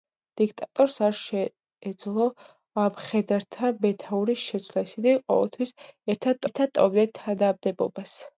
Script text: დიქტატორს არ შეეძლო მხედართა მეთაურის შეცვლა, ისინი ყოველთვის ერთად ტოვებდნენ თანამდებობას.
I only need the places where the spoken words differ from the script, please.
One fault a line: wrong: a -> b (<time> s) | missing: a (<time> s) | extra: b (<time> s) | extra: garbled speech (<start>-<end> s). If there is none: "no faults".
extra: ერთად (6.5 s)